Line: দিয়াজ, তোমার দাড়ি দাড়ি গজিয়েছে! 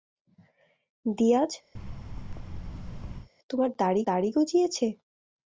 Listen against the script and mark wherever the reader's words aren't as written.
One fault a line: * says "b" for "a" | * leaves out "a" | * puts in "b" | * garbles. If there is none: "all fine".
all fine